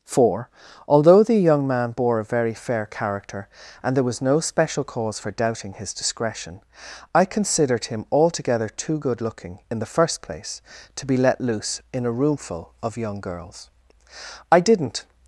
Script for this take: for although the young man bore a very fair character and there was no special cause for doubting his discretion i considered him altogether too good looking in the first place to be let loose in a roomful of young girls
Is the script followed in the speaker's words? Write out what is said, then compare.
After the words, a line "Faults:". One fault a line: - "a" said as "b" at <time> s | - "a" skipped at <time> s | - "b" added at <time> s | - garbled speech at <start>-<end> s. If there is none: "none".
for although the young man bore a very fair character and there was no special cause for doubting his discretion i considered him altogether too good looking in the first place to be let loose in a roomful of young girls i didn't
Faults:
- "i didn't" added at 14.5 s